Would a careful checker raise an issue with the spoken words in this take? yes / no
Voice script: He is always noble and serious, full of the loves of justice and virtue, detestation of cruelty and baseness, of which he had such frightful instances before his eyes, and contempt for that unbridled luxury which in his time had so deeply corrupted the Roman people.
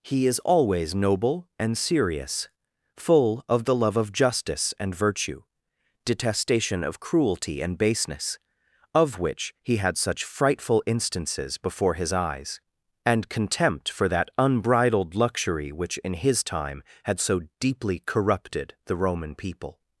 yes